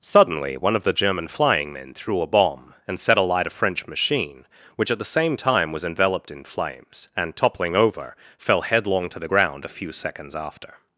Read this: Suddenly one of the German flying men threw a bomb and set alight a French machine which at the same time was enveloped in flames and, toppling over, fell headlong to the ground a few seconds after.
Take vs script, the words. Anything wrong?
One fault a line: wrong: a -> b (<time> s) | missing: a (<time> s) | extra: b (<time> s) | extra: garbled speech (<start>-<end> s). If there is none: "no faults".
no faults